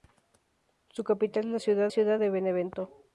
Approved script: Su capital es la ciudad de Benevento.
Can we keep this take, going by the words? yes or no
no